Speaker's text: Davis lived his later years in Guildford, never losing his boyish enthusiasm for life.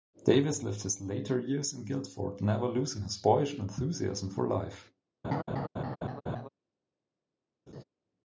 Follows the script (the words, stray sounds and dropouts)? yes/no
no